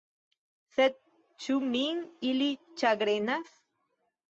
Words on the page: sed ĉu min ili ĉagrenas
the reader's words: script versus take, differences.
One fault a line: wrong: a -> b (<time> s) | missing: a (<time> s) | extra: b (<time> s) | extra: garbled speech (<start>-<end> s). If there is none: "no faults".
no faults